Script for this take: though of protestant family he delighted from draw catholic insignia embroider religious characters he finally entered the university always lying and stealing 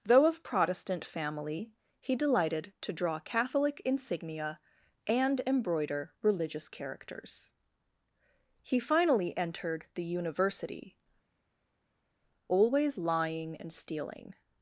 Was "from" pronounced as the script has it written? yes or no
no